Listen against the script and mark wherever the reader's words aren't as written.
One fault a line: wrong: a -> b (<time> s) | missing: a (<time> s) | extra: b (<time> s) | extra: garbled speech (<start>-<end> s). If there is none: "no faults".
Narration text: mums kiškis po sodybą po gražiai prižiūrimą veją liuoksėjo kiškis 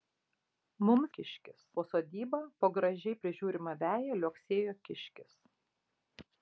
no faults